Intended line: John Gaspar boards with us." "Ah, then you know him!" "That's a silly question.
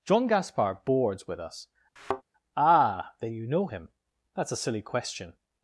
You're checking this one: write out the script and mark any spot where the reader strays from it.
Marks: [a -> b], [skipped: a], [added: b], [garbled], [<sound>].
John Gaspar boards with us." [thud] "Ah, then you know him!" "That's a silly question.